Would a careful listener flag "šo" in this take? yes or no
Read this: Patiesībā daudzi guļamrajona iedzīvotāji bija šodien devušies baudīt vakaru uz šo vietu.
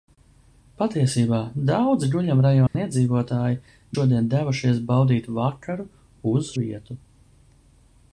yes